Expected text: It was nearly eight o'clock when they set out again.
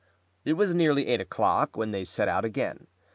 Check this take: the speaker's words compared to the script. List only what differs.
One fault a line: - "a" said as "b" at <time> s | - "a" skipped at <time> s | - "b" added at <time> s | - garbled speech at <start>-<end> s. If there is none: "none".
none